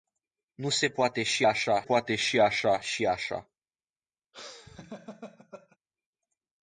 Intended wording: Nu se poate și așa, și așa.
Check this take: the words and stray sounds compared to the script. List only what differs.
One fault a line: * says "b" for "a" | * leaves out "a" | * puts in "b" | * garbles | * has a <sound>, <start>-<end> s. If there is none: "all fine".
* puts in "poate și așa"
* has a laugh, 4.3-5.8 s